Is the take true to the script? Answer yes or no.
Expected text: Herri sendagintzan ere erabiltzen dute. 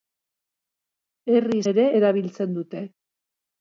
no